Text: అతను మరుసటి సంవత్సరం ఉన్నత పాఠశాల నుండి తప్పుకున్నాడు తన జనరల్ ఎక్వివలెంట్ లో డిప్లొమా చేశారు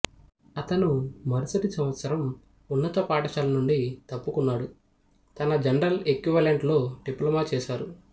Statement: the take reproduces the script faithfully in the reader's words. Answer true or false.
true